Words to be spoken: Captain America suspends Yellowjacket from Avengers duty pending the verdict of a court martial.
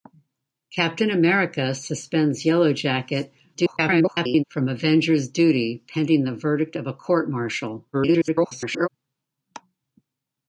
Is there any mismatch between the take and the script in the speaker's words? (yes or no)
yes